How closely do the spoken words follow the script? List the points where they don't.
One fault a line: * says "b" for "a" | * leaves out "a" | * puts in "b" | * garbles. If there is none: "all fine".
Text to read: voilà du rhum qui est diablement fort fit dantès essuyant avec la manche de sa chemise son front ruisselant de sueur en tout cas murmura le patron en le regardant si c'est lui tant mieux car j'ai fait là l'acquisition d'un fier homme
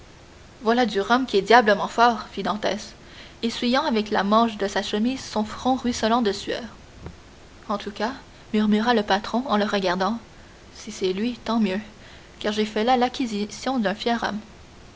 all fine